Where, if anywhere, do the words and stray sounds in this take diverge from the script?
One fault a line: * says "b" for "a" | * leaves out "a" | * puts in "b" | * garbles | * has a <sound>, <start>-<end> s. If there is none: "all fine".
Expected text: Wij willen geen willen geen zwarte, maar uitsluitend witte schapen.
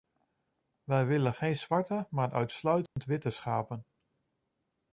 * leaves out "willen geen"
* has a dropout, 2.9-3.0 s